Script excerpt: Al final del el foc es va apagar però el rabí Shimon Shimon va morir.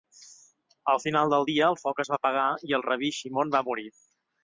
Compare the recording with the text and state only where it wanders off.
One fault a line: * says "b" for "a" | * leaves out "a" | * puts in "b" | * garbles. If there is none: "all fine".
* puts in "dia"
* says "i" for "però"
* leaves out "Shimon"